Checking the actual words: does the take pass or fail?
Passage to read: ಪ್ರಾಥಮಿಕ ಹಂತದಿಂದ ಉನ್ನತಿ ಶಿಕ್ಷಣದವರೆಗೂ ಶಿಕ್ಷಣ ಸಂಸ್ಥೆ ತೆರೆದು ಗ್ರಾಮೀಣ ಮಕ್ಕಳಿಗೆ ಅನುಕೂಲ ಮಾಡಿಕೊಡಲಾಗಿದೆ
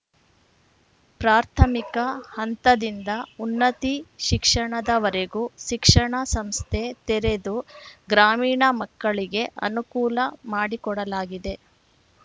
pass